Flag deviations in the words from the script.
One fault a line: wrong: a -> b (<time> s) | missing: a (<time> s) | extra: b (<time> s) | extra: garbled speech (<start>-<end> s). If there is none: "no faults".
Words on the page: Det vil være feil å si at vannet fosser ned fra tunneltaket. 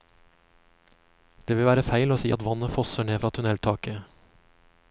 no faults